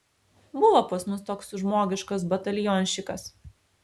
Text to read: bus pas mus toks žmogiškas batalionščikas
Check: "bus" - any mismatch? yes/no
yes